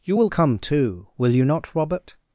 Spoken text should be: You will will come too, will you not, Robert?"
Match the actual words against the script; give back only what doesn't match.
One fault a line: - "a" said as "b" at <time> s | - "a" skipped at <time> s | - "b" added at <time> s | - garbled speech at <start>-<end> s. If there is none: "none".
- "will" skipped at 0.3 s